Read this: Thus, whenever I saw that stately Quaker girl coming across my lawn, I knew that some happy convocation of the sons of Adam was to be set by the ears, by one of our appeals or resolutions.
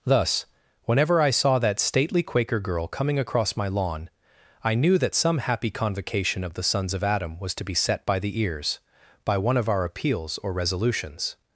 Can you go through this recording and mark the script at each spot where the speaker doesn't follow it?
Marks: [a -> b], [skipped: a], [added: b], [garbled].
Thus, whenever I saw that stately Quaker girl coming across my lawn, I knew that some happy convocation of the sons of Adam was to be set by the ears, by one of our appeals or resolutions.